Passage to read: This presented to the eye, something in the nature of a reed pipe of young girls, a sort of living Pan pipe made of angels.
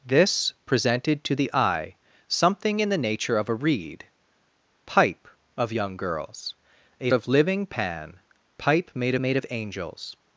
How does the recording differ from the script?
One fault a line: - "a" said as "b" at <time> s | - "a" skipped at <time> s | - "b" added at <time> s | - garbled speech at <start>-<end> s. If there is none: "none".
- "sort" skipped at 7.1 s
- "made" added at 9.2 s